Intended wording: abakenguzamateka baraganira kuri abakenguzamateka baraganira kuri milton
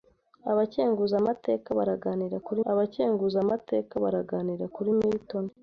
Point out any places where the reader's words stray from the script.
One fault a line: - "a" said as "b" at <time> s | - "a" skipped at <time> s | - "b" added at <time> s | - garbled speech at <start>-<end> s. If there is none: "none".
none